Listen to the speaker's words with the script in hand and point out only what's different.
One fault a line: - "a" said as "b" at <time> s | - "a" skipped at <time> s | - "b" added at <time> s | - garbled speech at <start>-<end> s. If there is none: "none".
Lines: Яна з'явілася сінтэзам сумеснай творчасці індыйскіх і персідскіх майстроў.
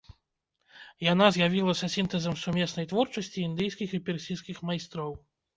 none